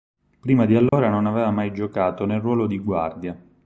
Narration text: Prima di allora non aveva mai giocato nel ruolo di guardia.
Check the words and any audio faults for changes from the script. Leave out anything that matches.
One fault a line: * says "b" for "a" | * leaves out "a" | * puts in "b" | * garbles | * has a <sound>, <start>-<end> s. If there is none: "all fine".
* has a dropout, 0.9-0.9 s